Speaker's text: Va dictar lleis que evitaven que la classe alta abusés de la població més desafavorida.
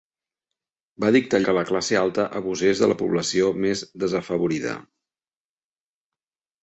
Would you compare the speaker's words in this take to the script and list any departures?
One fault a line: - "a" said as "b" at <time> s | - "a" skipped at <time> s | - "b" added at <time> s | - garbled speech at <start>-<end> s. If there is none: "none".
- "lleis que evitaven" skipped at 1.4 s